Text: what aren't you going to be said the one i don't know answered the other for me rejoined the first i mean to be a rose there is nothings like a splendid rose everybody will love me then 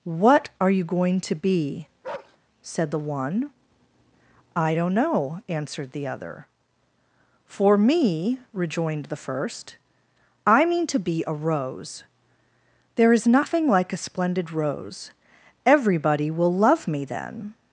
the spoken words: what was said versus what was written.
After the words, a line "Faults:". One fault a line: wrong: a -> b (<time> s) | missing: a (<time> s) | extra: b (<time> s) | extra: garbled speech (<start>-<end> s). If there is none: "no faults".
what are you going to be said the one i don't know answered the other for me rejoined the first i mean to be a rose there is nothing like a splendid rose everybody will love me then
Faults:
wrong: aren't -> are (0.6 s)
wrong: nothings -> nothing (13.3 s)